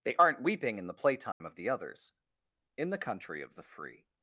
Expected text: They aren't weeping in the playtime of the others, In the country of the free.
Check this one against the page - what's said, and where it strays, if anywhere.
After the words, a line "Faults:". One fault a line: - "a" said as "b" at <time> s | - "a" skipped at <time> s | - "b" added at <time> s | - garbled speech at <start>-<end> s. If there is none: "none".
They aren't weeping in the playtime of the others, In the country of the free.
Faults:
none